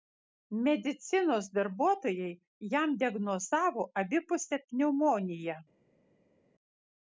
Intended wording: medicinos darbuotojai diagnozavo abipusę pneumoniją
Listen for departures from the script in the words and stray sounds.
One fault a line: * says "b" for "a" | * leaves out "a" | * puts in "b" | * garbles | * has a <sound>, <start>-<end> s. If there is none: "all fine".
* puts in "jam"